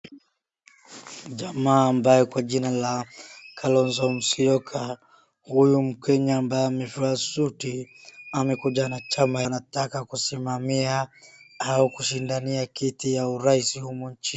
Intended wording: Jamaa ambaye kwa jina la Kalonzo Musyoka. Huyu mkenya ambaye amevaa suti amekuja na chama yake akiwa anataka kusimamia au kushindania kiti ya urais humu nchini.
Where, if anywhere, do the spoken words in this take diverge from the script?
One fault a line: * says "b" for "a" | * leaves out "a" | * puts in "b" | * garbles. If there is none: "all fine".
* leaves out "yake akiwa"